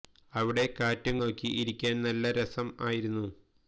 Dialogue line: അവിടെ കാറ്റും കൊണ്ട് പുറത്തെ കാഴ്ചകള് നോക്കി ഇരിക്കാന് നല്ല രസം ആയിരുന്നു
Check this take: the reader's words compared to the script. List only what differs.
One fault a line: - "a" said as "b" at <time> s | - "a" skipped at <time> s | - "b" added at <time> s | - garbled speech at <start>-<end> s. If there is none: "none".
- "കൊണ്ട് പുറത്തെ കാഴ്ചകള്" skipped at 1.1 s